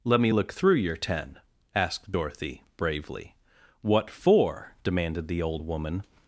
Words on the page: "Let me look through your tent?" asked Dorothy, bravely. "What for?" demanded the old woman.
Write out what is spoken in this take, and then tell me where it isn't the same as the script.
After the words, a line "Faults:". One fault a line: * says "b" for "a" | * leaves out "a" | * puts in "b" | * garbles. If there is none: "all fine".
"Let me look through your ten?" asked Dorothy, bravely. "What for?" demanded the old woman.
Faults:
* says "ten" for "tent"